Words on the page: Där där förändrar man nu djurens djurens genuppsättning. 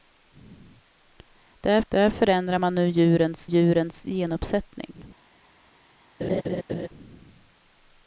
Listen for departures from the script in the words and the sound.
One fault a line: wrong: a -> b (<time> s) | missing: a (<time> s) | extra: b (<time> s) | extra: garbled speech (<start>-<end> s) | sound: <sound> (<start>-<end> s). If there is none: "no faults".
sound: laugh (6.2-6.9 s)